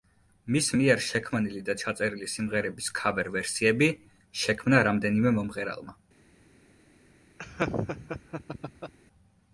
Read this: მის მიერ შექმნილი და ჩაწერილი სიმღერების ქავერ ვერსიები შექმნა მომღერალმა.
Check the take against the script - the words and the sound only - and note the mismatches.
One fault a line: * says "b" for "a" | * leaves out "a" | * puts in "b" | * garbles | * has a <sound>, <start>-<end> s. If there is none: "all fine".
* puts in "რამდენიმე"
* has a laugh, 7.4-8.9 s